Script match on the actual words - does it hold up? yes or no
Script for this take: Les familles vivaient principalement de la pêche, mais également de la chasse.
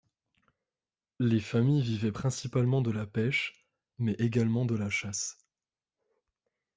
yes